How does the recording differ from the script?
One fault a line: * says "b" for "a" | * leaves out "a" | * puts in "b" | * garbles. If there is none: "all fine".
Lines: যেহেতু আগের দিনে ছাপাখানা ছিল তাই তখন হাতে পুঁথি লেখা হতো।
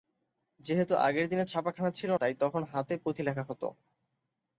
all fine